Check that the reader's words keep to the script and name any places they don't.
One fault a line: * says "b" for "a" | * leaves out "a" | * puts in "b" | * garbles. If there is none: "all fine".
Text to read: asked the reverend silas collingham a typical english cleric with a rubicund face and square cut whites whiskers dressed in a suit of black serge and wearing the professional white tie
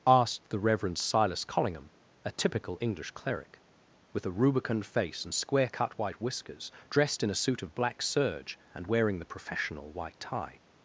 * says "white" for "whites"